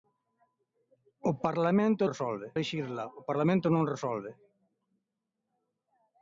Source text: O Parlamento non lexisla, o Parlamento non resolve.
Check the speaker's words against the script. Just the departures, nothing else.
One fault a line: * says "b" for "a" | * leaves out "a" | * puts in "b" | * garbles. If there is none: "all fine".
* says "resolve" for "non"